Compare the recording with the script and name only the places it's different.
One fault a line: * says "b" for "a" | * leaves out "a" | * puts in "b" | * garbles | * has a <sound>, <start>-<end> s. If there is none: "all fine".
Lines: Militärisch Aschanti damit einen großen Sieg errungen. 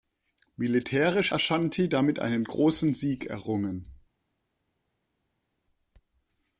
all fine